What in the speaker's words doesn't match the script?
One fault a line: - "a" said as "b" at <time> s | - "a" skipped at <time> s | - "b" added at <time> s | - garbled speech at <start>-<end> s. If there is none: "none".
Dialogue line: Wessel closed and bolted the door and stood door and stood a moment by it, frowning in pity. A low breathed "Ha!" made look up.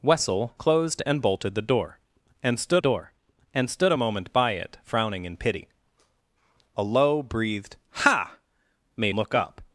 none